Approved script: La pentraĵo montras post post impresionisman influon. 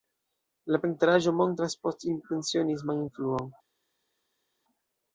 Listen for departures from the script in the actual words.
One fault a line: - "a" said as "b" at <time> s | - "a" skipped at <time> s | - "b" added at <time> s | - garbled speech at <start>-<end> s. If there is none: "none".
- "post" skipped at 2.1 s